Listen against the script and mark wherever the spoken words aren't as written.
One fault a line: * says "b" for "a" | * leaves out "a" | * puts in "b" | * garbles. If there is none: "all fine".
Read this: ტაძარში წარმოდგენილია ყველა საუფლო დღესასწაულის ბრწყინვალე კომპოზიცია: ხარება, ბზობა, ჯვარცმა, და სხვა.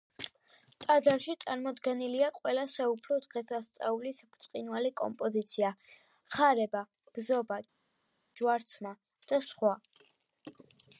all fine